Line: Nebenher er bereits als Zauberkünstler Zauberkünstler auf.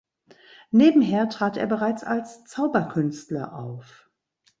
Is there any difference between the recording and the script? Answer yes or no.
yes